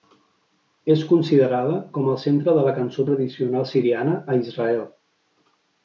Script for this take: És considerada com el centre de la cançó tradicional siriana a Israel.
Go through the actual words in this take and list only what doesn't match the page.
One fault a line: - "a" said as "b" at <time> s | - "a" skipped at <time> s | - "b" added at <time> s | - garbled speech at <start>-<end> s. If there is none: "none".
none